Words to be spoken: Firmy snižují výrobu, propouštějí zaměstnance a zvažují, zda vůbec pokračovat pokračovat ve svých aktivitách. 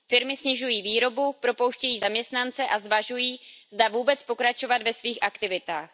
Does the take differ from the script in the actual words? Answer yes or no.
yes